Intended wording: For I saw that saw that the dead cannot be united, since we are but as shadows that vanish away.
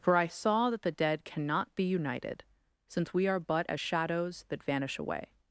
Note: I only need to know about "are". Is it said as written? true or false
true